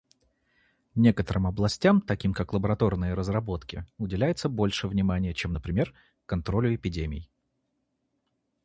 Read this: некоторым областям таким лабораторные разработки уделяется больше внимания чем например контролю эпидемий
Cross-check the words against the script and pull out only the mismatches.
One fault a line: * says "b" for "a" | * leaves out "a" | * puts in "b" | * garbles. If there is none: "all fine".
* puts in "как"